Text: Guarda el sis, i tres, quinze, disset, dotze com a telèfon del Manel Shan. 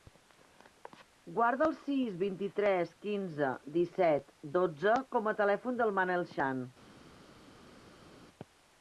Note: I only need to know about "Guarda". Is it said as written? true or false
true